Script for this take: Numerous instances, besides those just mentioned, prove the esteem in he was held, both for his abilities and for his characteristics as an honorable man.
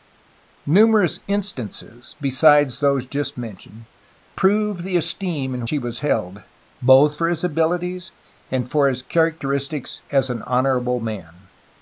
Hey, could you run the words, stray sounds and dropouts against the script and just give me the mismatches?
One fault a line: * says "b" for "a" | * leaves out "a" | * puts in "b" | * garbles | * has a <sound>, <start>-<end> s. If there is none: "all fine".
all fine